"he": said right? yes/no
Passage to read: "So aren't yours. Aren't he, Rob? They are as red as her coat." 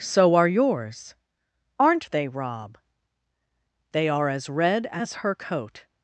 no